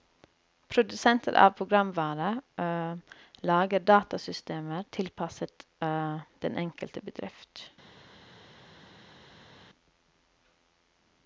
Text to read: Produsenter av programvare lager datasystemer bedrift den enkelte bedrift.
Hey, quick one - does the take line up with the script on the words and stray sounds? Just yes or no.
no